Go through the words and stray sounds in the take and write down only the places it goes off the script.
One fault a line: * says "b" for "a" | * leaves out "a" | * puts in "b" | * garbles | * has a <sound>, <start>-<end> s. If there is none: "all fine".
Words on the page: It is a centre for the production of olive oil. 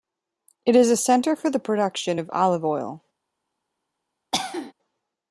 * has a cough, 4.3-4.7 s